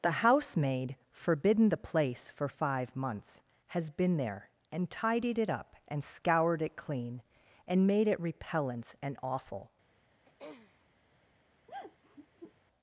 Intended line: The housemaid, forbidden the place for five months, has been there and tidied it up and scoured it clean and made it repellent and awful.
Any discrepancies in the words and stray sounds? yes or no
yes